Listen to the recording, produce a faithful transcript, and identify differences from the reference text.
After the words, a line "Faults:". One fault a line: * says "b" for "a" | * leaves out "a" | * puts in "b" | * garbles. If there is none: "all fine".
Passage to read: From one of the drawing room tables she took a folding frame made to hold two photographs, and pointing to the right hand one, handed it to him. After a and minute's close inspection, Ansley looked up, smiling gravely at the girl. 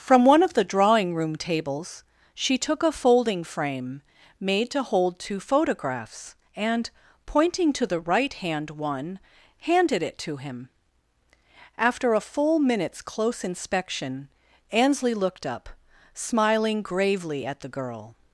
From one of the drawing room tables she took a folding frame made to hold two photographs, and pointing to the right hand one, handed it to him. After a full minute's close inspection, Ansley looked up, smiling gravely at the girl.
Faults:
* says "full" for "and"